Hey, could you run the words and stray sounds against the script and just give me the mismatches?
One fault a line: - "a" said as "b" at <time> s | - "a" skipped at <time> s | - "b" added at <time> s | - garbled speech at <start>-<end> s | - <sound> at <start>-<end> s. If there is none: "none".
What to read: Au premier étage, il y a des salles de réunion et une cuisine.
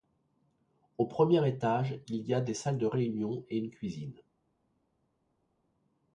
none